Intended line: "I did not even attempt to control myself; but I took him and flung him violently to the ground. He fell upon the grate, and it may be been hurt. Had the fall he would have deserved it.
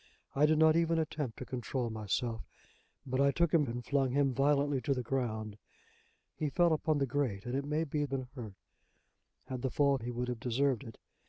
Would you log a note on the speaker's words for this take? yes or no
no